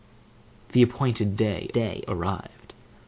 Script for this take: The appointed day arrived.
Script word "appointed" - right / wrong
right